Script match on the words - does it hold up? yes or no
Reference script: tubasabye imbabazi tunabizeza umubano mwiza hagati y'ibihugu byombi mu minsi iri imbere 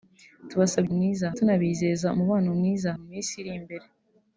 no